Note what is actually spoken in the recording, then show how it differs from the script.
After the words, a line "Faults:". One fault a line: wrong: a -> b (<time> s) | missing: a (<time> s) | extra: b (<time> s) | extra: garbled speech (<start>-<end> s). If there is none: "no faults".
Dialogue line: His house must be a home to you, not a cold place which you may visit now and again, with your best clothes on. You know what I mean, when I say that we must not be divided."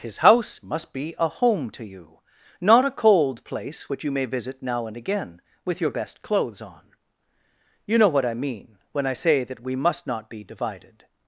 His house must be a home to you, not a cold place which you may visit now and again, with your best clothes on. You know what I mean, when I say that we must not be divided."
Faults:
no faults